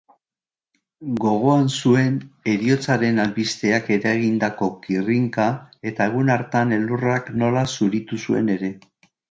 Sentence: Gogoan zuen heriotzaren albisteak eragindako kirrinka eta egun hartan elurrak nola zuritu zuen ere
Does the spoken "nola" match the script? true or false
true